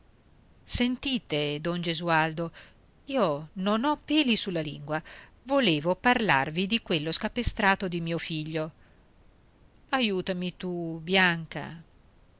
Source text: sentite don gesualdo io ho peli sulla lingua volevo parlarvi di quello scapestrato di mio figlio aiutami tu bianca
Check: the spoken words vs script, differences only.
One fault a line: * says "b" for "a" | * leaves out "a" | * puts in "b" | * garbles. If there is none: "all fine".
* puts in "non"